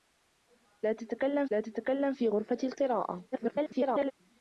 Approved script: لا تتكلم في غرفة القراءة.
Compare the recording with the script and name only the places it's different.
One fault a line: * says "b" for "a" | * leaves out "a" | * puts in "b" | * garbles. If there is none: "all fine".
* puts in "لا تتكلم"
* garbles